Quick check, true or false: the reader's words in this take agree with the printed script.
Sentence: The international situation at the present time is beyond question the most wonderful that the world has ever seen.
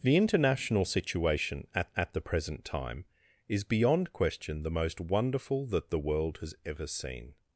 false